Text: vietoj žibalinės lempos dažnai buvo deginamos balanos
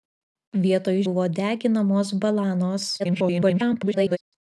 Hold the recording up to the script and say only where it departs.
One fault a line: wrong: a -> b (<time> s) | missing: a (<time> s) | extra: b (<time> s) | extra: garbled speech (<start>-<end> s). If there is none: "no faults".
missing: žibalinės lempos dažnai (0.9 s)
extra: garbled speech (3.0-4.2 s)